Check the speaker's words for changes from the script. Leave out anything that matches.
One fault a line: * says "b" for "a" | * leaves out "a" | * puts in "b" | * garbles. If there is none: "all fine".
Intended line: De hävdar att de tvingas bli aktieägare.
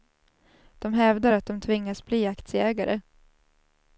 all fine